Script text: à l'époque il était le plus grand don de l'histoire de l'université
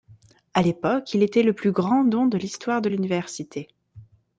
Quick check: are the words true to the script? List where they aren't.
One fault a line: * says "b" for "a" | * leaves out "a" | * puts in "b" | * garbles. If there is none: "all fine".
all fine